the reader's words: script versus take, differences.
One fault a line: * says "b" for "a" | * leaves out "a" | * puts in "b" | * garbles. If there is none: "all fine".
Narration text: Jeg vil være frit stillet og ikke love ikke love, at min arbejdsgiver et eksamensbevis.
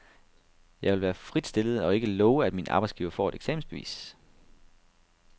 * leaves out "ikke love"
* puts in "får"